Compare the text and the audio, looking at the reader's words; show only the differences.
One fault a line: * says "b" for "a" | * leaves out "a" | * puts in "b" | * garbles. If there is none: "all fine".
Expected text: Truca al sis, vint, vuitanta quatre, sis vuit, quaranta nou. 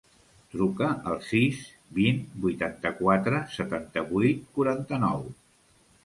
* says "setanta" for "sis"